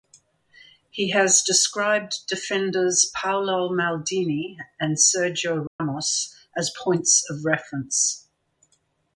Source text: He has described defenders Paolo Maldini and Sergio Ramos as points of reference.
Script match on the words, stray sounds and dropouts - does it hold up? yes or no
no